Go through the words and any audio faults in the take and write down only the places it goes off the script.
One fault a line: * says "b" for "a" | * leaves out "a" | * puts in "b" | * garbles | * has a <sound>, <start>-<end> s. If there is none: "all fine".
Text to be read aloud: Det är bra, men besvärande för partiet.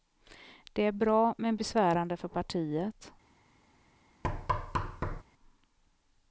* has a thud, 4.2-5.2 s